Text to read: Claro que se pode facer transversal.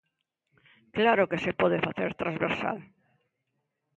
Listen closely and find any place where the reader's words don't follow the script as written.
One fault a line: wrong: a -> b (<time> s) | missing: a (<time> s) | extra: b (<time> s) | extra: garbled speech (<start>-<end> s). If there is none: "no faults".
no faults